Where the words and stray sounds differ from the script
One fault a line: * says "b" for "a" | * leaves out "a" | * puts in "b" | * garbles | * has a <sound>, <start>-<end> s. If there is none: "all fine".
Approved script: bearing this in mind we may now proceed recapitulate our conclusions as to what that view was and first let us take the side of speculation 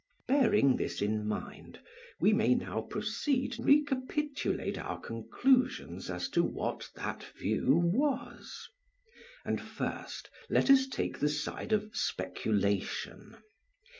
all fine